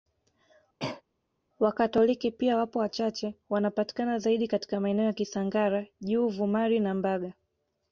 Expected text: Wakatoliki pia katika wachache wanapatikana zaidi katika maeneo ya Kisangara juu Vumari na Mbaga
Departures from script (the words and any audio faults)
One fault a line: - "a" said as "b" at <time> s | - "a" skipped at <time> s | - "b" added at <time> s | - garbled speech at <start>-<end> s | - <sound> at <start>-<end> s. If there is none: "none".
- cough at 0.8-1.0 s
- "katika" said as "wapo" at 2.6 s